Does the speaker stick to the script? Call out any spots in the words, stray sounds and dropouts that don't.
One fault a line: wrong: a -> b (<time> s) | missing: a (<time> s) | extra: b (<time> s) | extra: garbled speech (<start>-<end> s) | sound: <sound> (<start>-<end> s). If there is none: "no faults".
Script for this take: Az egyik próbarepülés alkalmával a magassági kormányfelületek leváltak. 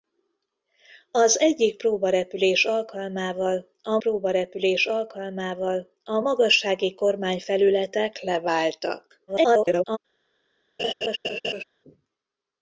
extra: próbarepülés alkalmával a (4.0 s)
extra: garbled speech (9.3-10.0 s)
sound: laugh (10.8-11.6 s)